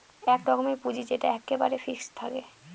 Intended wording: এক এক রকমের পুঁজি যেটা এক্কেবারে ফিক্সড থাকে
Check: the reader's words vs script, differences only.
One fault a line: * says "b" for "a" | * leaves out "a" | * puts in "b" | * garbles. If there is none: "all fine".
* leaves out "এক"